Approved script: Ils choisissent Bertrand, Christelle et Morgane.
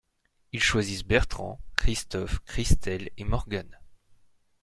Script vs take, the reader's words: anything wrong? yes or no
yes